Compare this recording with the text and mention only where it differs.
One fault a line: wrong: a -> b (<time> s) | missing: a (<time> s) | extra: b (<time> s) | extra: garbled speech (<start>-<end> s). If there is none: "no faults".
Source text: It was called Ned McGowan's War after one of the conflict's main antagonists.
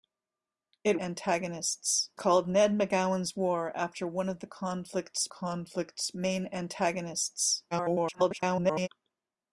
wrong: was -> antagonists (1.0 s)
extra: conflict's (5.3 s)
extra: garbled speech (7.7-8.9 s)